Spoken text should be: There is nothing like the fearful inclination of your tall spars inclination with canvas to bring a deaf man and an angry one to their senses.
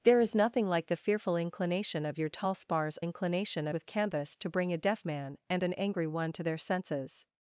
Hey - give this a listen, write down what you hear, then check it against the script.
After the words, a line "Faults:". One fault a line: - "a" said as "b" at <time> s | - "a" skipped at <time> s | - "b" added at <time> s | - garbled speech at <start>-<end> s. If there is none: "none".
There is nothing like the fearful inclination of your tall spars inclination with canvas to bring a deaf man and an angry one to their senses.
Faults:
none